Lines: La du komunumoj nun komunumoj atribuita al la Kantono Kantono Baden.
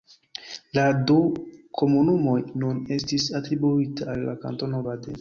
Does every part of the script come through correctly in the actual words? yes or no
no